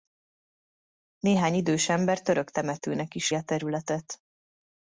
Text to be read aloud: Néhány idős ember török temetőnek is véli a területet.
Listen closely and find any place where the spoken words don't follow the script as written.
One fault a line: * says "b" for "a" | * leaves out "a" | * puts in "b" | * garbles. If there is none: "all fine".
* leaves out "véli"